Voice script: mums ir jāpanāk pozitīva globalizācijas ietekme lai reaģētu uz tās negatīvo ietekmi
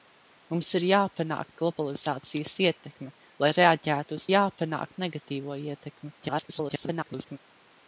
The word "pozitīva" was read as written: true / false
false